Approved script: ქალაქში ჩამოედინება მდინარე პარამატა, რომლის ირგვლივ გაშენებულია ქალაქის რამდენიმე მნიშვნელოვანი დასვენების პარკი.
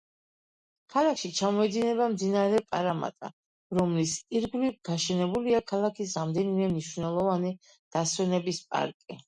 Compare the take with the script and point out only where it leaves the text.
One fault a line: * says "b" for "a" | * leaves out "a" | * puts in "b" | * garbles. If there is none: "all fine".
all fine